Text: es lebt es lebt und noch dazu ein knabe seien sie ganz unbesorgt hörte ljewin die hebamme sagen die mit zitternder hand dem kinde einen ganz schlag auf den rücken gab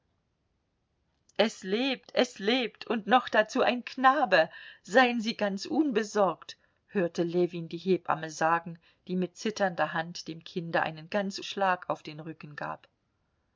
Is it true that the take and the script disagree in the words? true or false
false